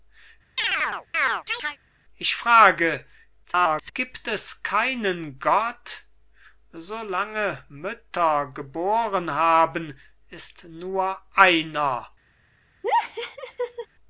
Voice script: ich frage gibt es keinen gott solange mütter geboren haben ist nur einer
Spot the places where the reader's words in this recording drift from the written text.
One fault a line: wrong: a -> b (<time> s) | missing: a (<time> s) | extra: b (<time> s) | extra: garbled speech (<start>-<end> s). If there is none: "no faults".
extra: garbled speech (3.4-3.9 s)